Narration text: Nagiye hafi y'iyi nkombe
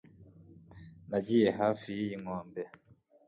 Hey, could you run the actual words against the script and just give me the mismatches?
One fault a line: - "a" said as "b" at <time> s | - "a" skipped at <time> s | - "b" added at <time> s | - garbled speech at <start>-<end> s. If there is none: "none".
none